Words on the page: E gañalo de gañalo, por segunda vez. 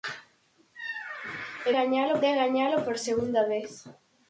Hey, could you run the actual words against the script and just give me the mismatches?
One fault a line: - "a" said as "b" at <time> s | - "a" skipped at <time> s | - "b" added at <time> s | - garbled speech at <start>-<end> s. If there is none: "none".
none